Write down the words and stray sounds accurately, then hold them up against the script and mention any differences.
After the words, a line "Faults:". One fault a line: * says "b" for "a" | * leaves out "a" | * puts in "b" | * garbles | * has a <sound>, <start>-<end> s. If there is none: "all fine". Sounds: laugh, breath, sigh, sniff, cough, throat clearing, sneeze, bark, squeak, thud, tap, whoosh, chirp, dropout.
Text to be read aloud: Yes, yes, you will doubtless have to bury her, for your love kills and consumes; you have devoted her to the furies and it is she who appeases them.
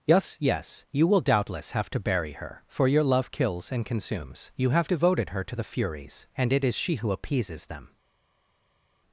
Yes, yes, you will doubtless have to bury her, for your love kills and consumes; you have devoted her to the furies and it is she who appeases them.
Faults:
all fine